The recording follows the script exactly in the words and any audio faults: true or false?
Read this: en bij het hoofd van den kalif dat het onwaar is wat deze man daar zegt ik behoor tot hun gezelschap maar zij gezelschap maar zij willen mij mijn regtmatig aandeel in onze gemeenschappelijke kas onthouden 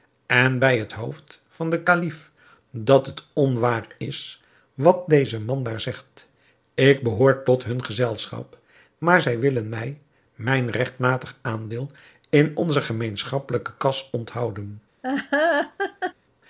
false